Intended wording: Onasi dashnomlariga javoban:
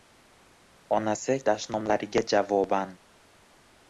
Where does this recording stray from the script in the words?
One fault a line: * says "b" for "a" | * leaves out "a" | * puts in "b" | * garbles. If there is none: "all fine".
all fine